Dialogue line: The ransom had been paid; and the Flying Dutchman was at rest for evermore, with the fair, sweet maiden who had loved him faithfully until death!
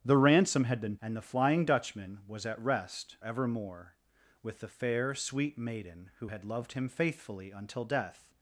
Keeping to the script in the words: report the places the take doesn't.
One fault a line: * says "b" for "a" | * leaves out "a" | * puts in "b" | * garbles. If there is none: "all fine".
* leaves out "paid"
* leaves out "for"